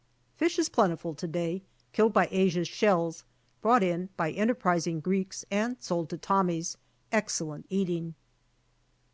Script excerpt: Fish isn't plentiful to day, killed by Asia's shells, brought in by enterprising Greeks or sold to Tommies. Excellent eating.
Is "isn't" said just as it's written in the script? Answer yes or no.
no